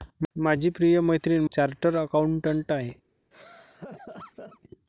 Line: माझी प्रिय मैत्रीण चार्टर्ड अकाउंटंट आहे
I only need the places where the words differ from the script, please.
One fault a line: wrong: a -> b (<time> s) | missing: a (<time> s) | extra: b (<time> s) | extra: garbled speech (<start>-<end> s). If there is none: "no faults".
no faults